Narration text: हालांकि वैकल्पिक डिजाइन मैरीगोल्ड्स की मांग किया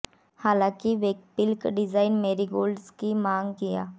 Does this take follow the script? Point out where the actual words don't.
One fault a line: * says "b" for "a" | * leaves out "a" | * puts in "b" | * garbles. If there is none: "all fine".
all fine